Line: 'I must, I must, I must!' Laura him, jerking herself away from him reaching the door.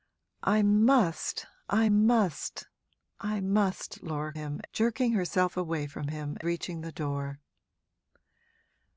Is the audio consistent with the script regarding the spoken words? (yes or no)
yes